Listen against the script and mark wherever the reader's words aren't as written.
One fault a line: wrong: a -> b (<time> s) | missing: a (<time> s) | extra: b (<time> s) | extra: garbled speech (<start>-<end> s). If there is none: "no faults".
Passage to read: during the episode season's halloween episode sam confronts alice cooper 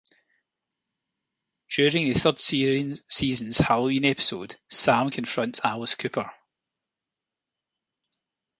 wrong: episode -> third (2.2 s)